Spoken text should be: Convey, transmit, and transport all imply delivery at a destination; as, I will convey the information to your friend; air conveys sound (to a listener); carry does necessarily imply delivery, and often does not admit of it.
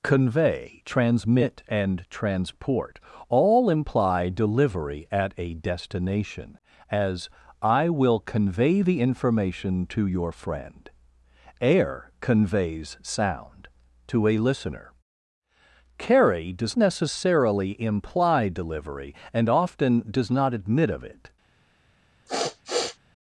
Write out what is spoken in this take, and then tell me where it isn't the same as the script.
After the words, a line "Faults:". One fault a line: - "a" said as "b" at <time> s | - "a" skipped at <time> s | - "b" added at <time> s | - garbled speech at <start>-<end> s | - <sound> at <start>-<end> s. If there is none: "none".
Convey, transmit, and transport all imply delivery at a destination; as, I will convey the information to your friend; air conveys sound (to a listener); carry does necessarily imply delivery, and often does not admit of it.
Faults:
- sniff at 22.3-23.0 s